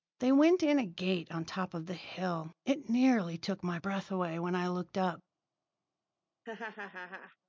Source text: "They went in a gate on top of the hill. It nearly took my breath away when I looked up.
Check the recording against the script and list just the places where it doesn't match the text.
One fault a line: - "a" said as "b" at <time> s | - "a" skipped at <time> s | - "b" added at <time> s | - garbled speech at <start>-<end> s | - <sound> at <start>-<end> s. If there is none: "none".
- laugh at 6.4-7.4 s